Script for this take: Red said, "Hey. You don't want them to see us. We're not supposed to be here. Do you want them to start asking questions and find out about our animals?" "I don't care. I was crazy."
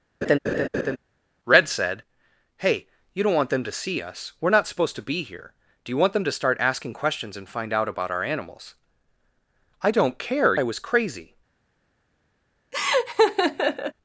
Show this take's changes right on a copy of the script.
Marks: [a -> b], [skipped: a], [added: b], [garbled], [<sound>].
[laugh] Red said, "Hey. You don't want them to see us. We're not supposed to be here. Do you want them to start asking questions and find out about our animals?" "I don't care. I was crazy." [laugh]